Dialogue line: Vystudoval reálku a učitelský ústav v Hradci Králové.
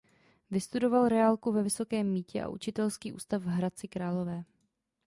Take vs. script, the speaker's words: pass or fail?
fail